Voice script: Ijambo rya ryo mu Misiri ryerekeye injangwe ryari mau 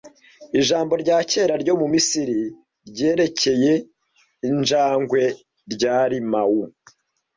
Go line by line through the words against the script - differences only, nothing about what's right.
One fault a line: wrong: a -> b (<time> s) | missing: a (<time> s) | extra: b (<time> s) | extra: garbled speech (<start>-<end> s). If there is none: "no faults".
extra: kera (1.3 s)